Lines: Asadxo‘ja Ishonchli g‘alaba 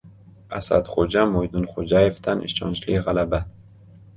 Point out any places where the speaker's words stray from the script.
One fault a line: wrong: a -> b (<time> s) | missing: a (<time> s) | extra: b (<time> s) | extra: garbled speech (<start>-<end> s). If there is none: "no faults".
extra: Mo‘ydinxo‘jayevdan (1.3 s)